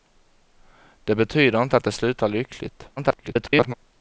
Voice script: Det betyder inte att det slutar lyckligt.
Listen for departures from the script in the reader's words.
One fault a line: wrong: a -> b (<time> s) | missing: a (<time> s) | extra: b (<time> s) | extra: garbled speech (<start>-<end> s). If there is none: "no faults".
extra: garbled speech (3.0-3.7 s)